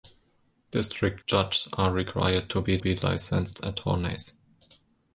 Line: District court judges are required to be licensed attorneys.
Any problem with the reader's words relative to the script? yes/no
yes